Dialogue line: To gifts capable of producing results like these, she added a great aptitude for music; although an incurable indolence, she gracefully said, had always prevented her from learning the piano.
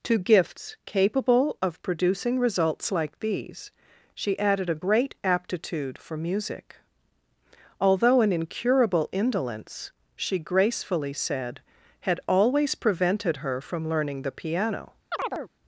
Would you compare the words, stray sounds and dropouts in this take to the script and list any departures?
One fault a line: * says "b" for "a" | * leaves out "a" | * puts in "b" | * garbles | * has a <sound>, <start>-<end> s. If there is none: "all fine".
* has a chirp, 15.1-15.5 s